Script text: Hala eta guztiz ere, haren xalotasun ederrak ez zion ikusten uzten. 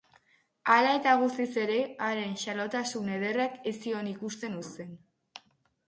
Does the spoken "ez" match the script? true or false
true